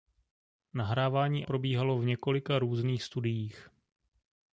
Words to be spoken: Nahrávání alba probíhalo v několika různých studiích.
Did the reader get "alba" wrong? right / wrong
wrong